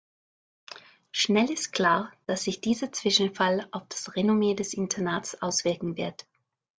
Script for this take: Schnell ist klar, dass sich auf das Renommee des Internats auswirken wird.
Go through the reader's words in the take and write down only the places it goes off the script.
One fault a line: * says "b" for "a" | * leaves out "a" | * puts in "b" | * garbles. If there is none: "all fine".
* puts in "dieser Zwischenfall"